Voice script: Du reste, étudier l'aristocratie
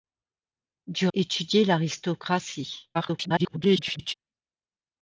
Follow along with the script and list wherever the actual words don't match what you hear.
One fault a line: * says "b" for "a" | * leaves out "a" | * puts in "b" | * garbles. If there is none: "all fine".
* leaves out "reste"
* garbles